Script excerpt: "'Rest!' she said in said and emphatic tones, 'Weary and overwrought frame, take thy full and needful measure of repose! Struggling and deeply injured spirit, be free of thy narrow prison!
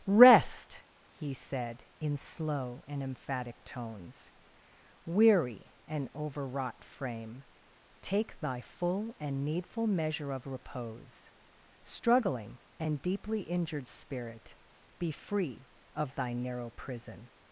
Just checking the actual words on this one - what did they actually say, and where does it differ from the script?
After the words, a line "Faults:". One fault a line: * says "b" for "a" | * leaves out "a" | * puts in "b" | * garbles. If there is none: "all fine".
"'Rest!' he said in slow and emphatic tones, 'Weary and overwrought frame, take thy full and needful measure of repose! Struggling and deeply injured spirit, be free of thy narrow prison!
Faults:
* says "he" for "she"
* says "slow" for "said"